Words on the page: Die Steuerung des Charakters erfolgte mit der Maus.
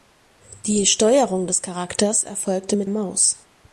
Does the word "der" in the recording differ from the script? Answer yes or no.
yes